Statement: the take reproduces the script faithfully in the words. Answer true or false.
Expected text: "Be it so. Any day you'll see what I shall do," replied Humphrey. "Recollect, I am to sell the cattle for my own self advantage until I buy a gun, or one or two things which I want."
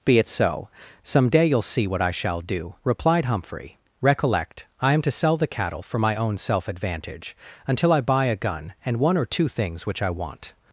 false